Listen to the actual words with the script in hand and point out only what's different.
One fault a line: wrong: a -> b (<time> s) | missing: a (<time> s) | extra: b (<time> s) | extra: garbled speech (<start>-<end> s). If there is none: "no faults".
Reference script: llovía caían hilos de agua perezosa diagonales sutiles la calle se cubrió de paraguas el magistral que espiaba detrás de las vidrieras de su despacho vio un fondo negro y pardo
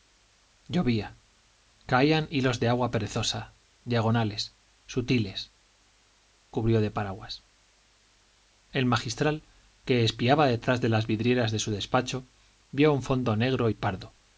missing: la calle se (5.5 s)